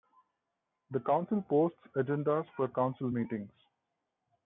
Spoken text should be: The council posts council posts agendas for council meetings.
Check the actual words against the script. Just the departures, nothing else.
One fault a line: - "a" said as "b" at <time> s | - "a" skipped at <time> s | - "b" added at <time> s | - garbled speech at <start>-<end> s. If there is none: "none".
- "council posts" skipped at 1.8 s